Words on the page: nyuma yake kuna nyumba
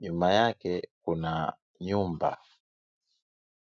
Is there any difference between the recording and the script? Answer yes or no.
no